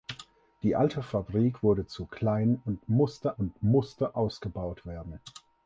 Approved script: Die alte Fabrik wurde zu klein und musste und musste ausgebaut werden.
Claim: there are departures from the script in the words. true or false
false